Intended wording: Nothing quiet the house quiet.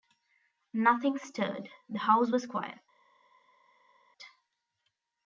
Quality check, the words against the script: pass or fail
fail